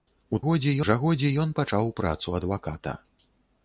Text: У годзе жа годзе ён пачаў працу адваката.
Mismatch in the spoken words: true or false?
false